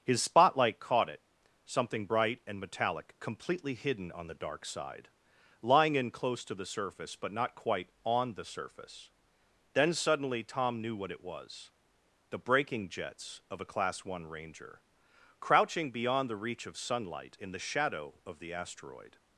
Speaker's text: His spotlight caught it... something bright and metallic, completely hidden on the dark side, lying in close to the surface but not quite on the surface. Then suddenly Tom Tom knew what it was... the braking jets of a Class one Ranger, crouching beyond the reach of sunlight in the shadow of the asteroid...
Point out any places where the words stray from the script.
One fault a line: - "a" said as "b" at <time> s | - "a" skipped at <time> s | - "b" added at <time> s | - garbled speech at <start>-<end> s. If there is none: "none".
- "Tom" skipped at 10.8 s